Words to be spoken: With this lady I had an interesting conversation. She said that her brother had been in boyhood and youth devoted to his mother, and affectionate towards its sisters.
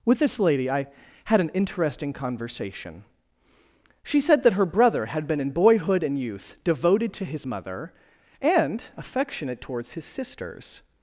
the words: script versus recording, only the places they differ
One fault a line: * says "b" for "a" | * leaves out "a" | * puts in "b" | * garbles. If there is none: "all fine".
* says "his" for "its"